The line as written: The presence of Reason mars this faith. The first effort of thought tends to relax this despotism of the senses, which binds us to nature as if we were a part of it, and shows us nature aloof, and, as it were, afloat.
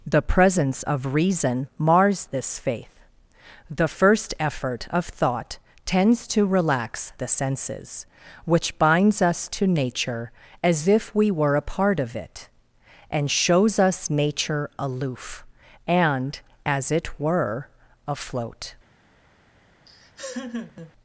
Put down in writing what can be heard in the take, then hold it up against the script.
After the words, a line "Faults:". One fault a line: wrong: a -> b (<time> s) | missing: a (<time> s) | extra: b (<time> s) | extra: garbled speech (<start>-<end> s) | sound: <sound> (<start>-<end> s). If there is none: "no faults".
The presence of Reason mars this faith. The first effort of thought tends to relax the senses, which binds us to nature as if we were a part of it, and shows us nature aloof, and, as it were, afloat.
Faults:
missing: this despotism of (7.1 s)
sound: laugh (19.9-20.9 s)